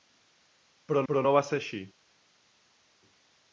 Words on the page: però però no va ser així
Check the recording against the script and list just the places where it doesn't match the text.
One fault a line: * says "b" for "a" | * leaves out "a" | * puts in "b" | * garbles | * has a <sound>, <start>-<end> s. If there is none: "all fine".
all fine